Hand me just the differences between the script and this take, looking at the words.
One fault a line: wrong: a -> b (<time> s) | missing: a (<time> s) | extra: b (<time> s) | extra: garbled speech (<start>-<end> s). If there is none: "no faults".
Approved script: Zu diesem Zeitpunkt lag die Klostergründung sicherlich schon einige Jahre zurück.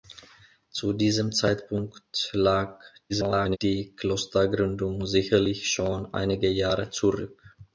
extra: garbled speech (3.1-3.6 s)